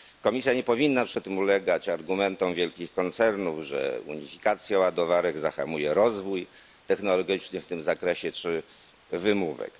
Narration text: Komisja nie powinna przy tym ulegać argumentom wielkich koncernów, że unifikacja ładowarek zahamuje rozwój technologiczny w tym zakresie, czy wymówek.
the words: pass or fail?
pass